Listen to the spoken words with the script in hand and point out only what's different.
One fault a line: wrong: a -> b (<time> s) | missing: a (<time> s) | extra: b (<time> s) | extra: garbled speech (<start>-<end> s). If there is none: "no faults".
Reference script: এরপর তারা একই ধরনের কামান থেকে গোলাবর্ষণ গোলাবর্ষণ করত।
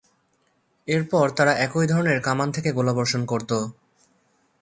missing: গোলাবর্ষণ (3.2 s)